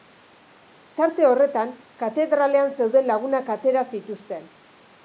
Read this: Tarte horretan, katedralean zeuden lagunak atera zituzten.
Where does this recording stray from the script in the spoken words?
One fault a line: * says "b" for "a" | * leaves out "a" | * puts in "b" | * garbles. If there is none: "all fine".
all fine